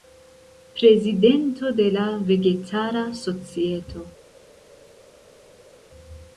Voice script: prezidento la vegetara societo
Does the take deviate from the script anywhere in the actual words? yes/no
yes